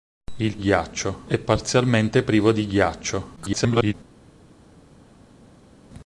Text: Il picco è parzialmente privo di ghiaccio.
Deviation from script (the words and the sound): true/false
true